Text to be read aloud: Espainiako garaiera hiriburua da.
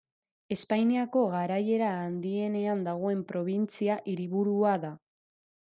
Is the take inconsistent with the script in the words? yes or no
yes